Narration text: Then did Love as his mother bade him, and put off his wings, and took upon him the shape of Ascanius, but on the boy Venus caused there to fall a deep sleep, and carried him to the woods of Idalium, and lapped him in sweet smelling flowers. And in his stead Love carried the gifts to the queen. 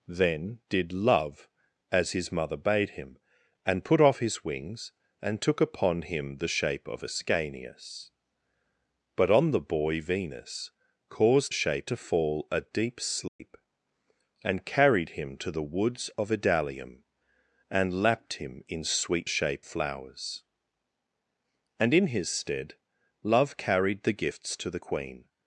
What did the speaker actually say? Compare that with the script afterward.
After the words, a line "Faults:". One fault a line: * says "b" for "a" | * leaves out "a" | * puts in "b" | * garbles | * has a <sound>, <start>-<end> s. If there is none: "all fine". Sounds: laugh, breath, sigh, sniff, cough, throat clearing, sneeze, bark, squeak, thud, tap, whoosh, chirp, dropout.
Then did Love as his mother bade him, and put off his wings, and took upon him the shape of Ascanius, but on the boy Venus caused shape to fall a deep sleep, and carried him to the woods of Idalium, and lapped him in sweet shape flowers. And in his stead Love carried the gifts to the queen.
Faults:
* says "shape" for "there"
* has a dropout, 13.3-13.4 s
* says "shape" for "smelling"